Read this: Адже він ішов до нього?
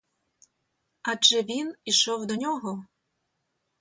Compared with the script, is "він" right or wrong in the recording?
right